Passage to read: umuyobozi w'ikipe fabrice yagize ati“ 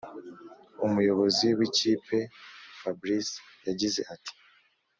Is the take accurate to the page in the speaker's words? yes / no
yes